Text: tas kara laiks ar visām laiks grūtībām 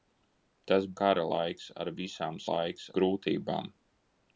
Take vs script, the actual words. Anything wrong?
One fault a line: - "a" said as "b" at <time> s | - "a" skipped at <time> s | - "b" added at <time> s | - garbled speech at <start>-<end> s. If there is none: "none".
none